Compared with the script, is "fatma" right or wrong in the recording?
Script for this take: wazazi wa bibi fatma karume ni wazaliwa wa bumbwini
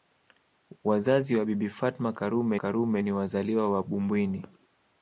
right